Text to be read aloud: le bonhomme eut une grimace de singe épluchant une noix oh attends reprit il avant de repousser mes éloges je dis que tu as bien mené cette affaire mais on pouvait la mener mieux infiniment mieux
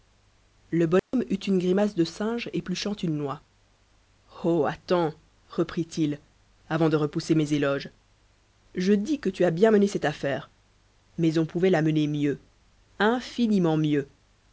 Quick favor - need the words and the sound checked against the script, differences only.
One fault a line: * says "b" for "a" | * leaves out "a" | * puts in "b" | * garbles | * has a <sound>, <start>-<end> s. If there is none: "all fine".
* has a dropout, 1.0-1.1 s